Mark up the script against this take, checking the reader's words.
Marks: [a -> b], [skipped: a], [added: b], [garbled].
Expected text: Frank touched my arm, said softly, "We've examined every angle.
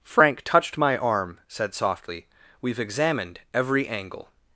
Frank touched my arm, said softly, "We've examined every angle.